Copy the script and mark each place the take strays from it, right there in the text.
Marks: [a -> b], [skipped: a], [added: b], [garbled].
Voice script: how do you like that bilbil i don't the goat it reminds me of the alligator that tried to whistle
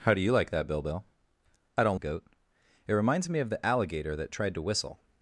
how do you like that bilbil i don't the goat it reminds me of the alligator that tried to whistle